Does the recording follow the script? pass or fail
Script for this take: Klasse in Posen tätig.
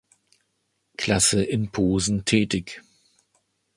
pass